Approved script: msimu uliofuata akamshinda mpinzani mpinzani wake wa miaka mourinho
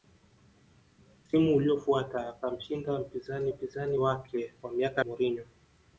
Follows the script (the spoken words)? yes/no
yes